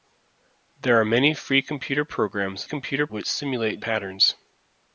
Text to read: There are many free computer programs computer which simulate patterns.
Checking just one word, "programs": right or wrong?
right